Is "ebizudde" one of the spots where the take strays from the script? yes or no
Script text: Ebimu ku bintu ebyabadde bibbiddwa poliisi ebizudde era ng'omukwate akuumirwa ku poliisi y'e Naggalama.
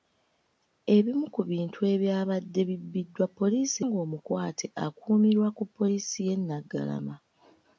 yes